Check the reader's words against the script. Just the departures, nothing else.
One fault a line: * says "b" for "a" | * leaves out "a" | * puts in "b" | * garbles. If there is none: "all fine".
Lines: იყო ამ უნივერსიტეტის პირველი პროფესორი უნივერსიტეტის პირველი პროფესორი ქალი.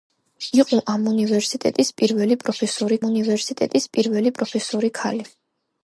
all fine